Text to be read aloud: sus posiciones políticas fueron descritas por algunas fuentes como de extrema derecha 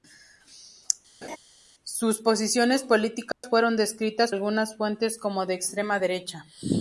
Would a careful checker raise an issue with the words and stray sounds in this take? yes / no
yes